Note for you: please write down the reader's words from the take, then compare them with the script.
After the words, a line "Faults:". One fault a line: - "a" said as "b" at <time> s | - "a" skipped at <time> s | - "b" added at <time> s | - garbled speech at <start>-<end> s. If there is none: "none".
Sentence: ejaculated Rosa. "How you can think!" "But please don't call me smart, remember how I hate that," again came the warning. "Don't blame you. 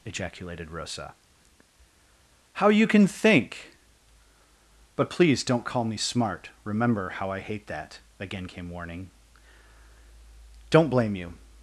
ejaculated Rosa. "How you can think!" "But please don't call me smart, remember how I hate that," again came warning. "Don't blame you.
Faults:
- "the" skipped at 8.7 s